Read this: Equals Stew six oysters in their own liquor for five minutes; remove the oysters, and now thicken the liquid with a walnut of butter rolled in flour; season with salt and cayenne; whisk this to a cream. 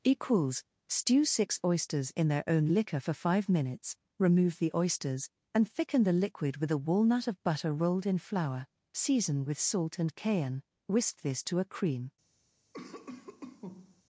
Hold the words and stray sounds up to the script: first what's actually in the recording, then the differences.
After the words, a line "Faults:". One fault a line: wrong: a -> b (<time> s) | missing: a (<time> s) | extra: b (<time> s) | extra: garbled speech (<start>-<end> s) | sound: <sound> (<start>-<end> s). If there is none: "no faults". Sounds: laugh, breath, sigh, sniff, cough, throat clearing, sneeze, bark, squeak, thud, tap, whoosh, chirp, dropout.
Equals Stew six oysters in their own liquor for five minutes; remove the oysters, and thicken the liquid with a walnut of butter rolled in flour; season with salt and cayenne; whisk this to a cream.
Faults:
missing: now (5.7 s)
sound: cough (12.7-14.0 s)